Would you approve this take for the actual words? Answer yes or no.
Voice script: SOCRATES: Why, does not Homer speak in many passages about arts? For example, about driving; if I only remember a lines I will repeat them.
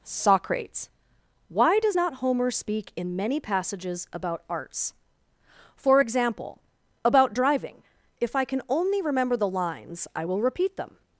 no